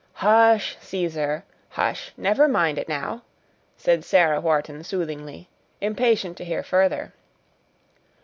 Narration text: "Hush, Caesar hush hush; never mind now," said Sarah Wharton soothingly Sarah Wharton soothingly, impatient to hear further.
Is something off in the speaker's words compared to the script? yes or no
yes